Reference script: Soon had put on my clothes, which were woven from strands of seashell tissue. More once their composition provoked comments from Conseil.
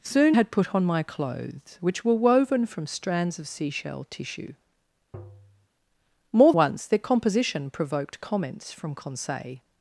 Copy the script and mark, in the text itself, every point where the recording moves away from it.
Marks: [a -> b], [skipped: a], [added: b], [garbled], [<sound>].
Soon had put on my clothes, which were woven from strands of seashell tissue. [tap] More once their composition provoked comments from Conseil.